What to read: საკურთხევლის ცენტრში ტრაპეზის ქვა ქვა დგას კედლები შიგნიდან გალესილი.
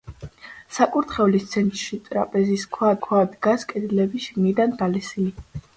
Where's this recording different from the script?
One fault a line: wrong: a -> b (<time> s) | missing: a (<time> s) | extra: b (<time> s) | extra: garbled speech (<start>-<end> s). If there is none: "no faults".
no faults